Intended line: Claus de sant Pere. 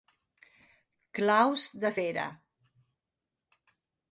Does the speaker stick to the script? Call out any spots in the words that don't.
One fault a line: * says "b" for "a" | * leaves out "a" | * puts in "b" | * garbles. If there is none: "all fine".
* leaves out "sant"